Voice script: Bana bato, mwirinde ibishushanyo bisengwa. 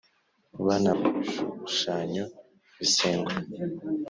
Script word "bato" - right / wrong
wrong